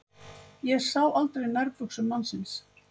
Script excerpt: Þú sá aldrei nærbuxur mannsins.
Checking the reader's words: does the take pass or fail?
fail